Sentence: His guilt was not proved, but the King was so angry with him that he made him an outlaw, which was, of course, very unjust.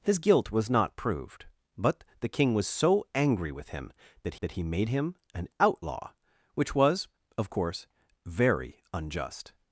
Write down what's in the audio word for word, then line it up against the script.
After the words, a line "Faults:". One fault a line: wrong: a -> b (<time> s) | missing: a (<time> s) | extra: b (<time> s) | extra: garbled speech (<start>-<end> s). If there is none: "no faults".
His guilt was not proved, but the King was so angry with him that that he made him an outlaw, which was, of course, very unjust.
Faults:
extra: that (4.4 s)